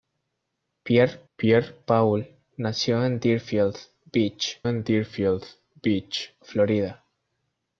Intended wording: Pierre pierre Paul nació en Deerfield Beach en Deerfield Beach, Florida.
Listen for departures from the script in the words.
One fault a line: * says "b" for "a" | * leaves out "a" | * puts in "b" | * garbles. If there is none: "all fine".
all fine